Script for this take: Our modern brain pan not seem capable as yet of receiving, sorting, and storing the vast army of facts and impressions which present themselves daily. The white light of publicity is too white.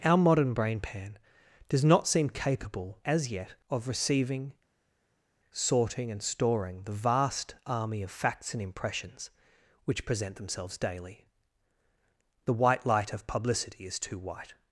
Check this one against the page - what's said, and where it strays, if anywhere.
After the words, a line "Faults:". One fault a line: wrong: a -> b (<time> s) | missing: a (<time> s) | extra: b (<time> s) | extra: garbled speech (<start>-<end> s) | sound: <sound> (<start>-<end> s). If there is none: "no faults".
Our modern brain pan does not seem capable as yet of receiving, sorting, and storing the vast army of facts and impressions which present themselves daily. The white light of publicity is too white.
Faults:
extra: does (1.7 s)